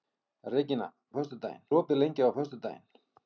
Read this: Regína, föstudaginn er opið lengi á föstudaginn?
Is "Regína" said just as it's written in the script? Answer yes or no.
yes